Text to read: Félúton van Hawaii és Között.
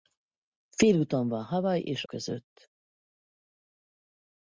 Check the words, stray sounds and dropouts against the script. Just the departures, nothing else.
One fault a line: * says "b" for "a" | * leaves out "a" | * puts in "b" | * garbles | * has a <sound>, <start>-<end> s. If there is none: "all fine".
all fine